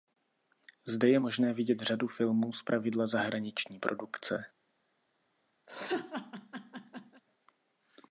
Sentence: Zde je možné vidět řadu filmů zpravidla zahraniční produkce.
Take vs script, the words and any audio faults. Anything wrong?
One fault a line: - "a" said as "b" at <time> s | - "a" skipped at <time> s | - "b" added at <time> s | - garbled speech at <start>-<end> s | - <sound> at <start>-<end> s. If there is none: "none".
- laugh at 5.7-7.2 s